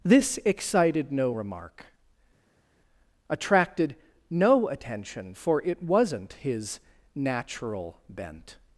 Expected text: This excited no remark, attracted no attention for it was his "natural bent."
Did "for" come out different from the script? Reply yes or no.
no